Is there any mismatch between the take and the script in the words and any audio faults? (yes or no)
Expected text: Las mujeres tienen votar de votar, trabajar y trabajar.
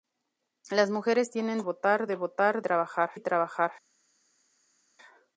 no